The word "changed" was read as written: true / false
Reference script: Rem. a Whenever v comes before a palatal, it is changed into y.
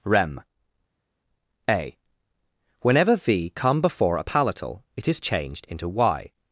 true